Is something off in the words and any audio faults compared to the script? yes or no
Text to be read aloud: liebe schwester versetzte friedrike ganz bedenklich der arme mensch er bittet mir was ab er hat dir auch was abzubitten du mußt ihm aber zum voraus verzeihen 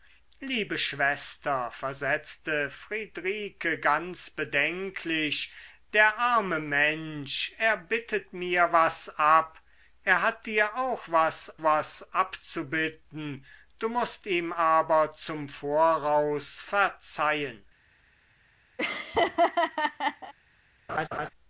yes